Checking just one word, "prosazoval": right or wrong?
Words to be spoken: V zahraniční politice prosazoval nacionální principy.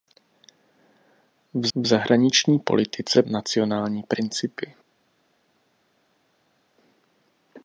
wrong